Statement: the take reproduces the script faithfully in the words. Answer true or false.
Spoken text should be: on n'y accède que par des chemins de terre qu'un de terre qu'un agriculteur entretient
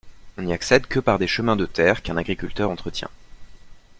false